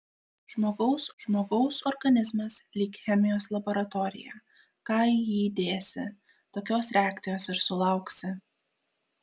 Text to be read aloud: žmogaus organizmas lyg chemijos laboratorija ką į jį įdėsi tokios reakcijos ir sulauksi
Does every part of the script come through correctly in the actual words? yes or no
no